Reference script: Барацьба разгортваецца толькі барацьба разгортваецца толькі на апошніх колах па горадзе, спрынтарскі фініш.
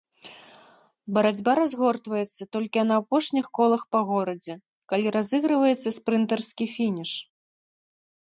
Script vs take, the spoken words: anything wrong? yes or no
yes